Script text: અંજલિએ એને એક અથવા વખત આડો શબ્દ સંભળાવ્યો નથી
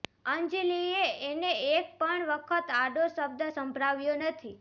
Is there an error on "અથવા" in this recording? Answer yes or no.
yes